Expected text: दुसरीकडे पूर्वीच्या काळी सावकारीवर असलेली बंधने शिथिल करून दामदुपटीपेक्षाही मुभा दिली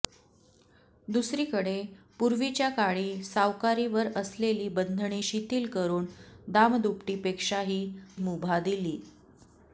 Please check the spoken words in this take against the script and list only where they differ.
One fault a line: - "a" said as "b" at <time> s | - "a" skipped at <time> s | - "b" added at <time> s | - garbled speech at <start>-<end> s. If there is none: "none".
none